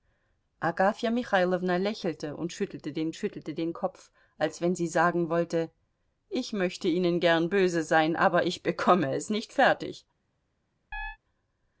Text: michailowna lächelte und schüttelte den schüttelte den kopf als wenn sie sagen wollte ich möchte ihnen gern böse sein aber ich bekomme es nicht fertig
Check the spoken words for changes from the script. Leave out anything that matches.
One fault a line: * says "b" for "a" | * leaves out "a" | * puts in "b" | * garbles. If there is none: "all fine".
all fine